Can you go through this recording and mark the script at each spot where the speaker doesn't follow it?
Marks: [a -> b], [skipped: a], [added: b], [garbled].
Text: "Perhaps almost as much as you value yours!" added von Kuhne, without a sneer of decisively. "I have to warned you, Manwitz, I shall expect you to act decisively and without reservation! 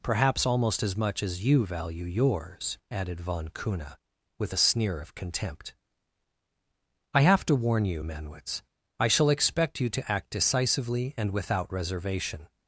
"Perhaps almost as much as you value yours!" added von Kuhne, [without -> with] a sneer of [decisively. -> contempt] "I have to [warned -> warn] you, Manwitz, I shall expect you to act decisively and without reservation!